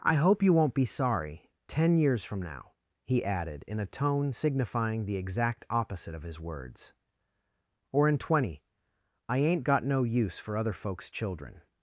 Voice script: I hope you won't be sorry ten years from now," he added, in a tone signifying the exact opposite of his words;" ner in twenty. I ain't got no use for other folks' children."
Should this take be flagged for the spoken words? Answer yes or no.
yes